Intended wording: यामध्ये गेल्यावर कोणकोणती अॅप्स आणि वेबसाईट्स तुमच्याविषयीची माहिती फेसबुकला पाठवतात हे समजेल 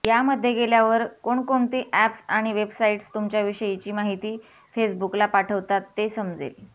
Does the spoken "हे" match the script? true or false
false